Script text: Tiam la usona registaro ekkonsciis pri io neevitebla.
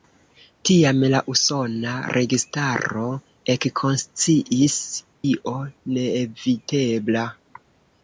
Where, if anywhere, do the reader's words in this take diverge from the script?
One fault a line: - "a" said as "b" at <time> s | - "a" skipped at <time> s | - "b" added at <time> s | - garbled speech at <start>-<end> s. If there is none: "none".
- "pri" skipped at 4.8 s